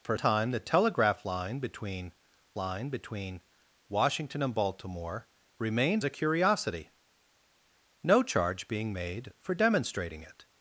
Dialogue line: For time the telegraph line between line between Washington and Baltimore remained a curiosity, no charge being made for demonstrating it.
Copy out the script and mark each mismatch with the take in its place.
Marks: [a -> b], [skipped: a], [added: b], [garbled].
For time the telegraph line between line between Washington and Baltimore remained a curiosity, no charge being made for demonstrating it.